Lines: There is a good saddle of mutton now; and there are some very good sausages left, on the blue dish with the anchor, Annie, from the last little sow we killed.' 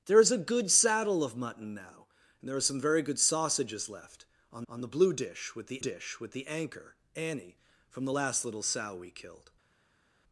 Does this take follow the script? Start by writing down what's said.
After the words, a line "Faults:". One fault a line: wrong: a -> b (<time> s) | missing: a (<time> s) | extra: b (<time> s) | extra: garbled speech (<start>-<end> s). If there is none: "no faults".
There is a good saddle of mutton now; and there are some very good sausages left, on on the blue dish with the dish with the anchor, Annie, from the last little sow we killed.'
Faults:
extra: on (4.7 s)
extra: dish with the (5.8 s)